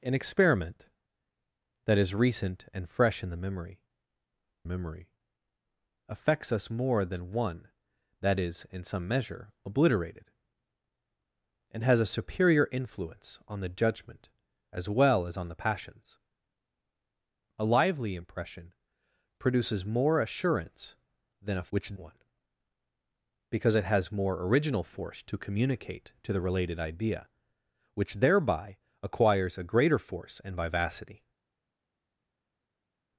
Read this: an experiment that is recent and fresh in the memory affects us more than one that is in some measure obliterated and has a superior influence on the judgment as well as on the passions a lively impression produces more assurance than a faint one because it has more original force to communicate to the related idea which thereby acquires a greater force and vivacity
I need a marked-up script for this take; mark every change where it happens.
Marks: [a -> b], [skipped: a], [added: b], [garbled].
an experiment that is recent and fresh in the memory [added: memory] affects us more than one that is in some measure obliterated and has a superior influence on the judgment as well as on the passions a lively impression produces more assurance than a [faint -> which] one because it has more original force to communicate to the related idea which thereby acquires a greater force and vivacity